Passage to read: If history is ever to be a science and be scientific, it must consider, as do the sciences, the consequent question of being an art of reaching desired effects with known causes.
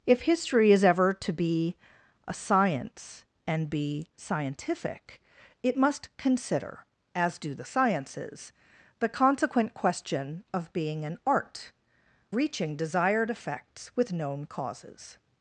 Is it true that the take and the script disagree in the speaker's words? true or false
true